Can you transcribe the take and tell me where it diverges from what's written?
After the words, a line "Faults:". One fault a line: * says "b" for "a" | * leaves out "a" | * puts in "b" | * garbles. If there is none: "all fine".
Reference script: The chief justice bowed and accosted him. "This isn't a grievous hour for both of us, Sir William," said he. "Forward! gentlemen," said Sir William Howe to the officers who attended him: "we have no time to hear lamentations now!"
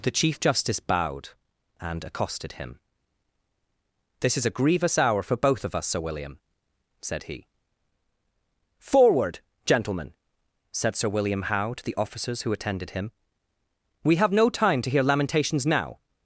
The chief justice bowed and accosted him. "This is a grievous hour for both of us, Sir William," said he. "Forward! gentlemen," said Sir William Howe to the officers who attended him: "we have no time to hear lamentations now!"
Faults:
* says "is" for "isn't"